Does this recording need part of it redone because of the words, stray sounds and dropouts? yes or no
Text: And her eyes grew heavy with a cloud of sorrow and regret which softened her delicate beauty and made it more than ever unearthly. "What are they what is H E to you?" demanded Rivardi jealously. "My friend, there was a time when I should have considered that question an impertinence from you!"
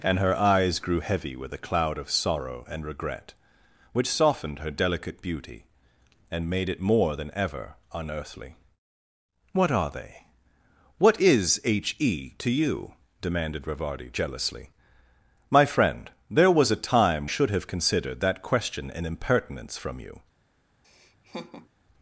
yes